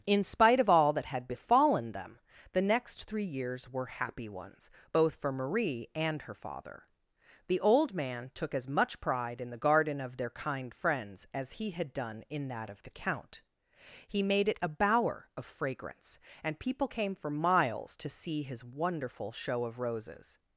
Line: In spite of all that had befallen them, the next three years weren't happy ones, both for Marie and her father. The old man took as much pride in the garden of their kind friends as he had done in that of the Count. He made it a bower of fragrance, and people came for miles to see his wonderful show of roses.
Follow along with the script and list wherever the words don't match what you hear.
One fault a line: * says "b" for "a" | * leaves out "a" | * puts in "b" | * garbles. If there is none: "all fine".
* says "were" for "weren't"